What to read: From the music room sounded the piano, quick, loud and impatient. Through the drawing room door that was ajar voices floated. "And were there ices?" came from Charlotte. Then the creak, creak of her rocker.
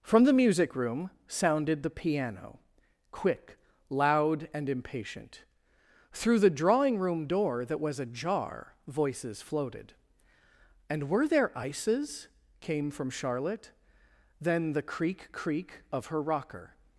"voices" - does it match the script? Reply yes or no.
yes